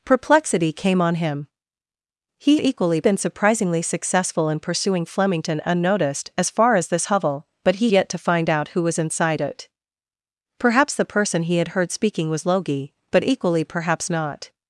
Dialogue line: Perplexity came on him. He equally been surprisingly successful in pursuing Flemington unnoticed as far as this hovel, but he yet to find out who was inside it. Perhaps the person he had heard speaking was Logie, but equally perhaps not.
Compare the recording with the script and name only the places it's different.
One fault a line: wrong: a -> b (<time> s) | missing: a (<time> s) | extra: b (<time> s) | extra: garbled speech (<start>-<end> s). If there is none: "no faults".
no faults